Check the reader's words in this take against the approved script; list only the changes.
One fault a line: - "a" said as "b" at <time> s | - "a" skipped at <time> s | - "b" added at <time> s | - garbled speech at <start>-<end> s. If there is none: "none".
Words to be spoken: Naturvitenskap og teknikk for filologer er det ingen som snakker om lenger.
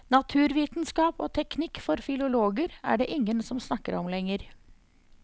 none